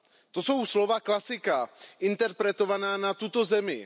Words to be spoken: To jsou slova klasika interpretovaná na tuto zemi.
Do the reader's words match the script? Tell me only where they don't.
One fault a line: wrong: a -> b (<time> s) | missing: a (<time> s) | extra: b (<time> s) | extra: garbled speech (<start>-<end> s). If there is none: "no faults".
no faults